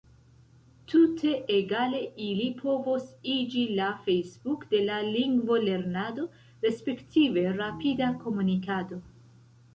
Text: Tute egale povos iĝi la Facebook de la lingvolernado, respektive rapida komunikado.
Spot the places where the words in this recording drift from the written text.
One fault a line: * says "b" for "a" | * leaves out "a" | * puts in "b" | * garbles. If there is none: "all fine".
* puts in "ili"